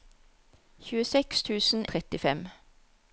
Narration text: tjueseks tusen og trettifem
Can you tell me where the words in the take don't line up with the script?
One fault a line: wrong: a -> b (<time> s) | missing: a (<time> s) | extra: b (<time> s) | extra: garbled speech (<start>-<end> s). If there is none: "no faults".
no faults